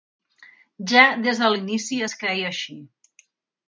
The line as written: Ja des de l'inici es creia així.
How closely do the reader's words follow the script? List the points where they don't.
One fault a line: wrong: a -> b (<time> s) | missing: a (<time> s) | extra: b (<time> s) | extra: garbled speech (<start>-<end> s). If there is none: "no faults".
no faults